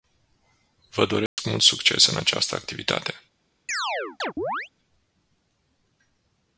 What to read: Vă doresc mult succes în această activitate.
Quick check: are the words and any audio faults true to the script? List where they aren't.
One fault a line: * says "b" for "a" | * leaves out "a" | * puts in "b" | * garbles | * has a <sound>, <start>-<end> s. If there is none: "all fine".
* has a dropout, 1.3-1.4 s
* has a chirp, 3.7-4.7 s